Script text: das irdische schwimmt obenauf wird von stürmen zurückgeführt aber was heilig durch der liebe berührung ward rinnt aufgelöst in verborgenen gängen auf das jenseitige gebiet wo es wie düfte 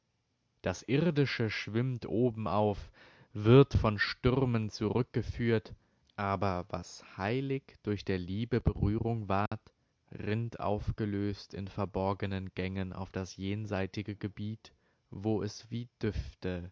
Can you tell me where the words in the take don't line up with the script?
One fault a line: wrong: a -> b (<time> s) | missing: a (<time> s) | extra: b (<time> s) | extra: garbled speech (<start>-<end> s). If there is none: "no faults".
no faults